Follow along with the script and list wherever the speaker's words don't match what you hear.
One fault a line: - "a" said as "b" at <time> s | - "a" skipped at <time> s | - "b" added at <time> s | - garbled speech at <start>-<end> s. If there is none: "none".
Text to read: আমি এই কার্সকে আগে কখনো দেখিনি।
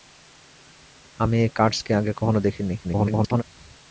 - garbled speech at 2.8-3.4 s